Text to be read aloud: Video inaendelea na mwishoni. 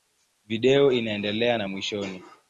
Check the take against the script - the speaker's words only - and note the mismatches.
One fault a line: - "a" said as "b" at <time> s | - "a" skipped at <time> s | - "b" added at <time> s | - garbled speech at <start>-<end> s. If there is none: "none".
none